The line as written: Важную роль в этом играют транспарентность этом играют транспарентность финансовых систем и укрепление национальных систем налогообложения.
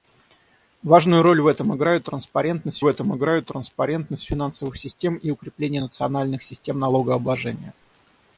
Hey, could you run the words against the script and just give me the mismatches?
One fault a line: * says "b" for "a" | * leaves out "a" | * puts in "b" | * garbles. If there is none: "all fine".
all fine